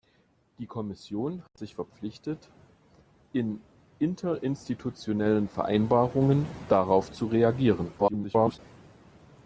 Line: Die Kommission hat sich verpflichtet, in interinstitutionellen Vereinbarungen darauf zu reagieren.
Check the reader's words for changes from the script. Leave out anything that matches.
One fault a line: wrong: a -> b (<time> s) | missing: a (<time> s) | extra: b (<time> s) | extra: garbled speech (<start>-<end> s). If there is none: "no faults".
extra: garbled speech (8.0-8.6 s)